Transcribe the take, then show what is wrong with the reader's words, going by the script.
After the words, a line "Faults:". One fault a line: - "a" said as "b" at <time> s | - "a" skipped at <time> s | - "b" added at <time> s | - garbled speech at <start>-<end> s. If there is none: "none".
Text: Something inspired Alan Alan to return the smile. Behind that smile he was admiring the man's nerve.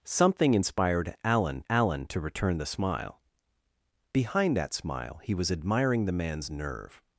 Something inspired Alan Alan to return the smile. Behind that smile he was admiring the man's nerve.
Faults:
none